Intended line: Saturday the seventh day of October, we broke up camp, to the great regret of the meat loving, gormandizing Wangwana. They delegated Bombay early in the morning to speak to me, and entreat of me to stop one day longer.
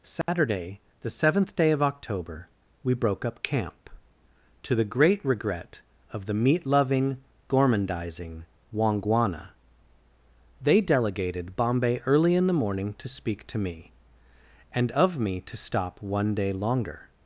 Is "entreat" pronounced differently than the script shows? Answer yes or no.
yes